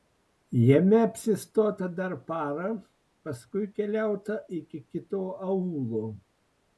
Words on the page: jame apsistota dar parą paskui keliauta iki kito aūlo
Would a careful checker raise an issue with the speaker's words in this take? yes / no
no